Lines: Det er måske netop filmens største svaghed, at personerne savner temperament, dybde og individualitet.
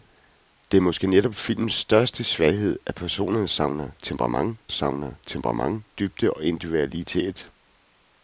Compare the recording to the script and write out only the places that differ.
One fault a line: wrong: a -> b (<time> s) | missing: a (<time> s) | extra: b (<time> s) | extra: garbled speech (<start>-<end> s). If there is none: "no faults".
extra: savner temperament (4.7 s)